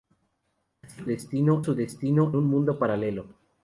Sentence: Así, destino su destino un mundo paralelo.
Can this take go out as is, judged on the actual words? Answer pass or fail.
pass